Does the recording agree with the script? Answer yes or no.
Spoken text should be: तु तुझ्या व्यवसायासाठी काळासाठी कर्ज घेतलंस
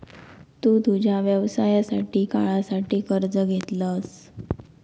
yes